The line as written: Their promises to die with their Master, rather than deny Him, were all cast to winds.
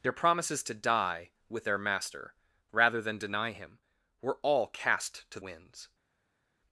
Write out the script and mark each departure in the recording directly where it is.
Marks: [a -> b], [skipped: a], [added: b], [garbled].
Their promises to die with their Master, rather than deny Him, were all cast to winds.